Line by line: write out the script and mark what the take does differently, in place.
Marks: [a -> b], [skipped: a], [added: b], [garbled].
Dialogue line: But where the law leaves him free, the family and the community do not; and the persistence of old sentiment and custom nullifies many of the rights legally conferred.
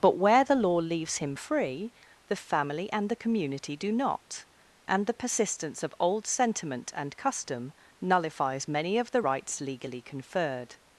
But where the law leaves him free, the family and the community do not; and the persistence of old sentiment and custom nullifies many of the rights legally conferred.